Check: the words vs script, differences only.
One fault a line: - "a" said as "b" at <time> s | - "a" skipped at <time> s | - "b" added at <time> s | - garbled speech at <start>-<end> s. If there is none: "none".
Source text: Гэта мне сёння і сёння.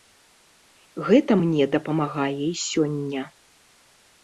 - "сёння" said as "дапамагае" at 1.8 s